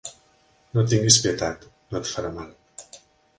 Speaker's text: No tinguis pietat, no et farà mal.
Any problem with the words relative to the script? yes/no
no